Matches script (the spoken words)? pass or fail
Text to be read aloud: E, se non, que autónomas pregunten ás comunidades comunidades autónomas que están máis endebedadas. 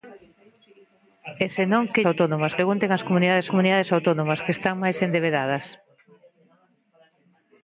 pass